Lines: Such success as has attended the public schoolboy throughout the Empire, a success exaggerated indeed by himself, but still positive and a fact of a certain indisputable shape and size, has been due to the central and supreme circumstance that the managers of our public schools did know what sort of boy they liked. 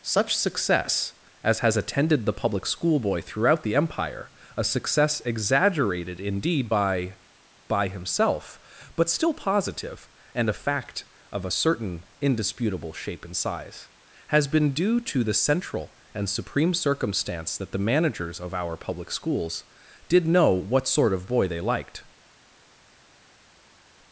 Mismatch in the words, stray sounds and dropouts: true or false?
true